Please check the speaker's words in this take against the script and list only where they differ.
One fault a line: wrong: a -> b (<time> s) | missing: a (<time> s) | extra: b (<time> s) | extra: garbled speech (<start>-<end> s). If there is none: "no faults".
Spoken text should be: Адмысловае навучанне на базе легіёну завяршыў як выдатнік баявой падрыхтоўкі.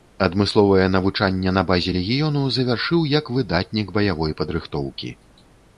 no faults